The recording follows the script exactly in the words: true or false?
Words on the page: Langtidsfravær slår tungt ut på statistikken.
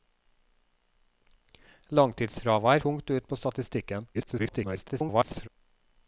false